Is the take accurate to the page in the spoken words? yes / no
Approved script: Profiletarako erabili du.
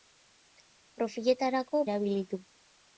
yes